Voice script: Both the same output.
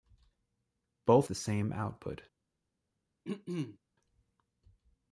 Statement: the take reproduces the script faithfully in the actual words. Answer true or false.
true